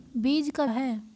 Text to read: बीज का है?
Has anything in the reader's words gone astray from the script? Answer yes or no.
no